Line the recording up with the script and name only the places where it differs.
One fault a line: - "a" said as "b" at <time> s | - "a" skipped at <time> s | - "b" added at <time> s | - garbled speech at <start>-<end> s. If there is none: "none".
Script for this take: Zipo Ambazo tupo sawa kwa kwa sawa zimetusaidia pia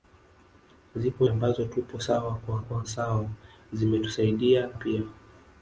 none